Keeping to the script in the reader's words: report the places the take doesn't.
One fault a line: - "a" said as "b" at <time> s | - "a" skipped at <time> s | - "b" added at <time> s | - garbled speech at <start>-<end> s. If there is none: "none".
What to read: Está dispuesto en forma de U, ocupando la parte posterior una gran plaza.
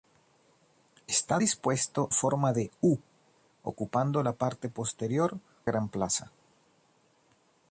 - "en" skipped at 2.1 s
- "una" skipped at 5.4 s